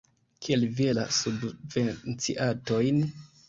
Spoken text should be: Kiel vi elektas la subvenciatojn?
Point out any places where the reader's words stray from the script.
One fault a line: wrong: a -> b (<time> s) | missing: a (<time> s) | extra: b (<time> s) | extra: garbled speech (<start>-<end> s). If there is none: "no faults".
missing: elektas (0.9 s)